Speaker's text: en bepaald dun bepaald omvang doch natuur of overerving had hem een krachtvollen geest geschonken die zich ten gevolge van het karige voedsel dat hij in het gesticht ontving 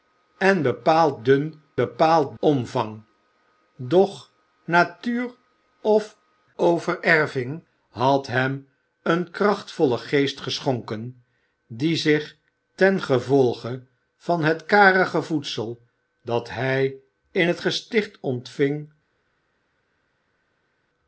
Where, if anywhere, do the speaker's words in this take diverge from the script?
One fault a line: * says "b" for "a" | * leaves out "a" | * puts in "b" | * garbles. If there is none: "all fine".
all fine